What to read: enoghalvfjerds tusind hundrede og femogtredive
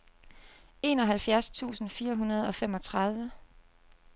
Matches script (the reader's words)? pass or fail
fail